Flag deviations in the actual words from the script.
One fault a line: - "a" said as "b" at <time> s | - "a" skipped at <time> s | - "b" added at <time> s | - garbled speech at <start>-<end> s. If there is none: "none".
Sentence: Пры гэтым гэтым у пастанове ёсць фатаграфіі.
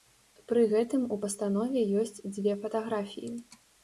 - "гэтым" skipped at 1.0 s
- "дзве" added at 2.3 s